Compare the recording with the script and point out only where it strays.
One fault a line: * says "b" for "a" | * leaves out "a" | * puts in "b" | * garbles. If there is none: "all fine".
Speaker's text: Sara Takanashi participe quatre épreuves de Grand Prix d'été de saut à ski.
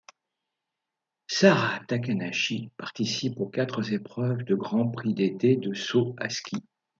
* puts in "aux"